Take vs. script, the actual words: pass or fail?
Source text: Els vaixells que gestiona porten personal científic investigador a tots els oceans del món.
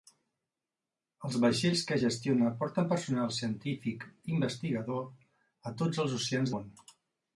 fail